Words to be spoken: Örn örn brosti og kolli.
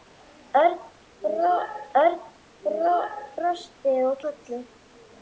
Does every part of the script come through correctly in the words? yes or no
yes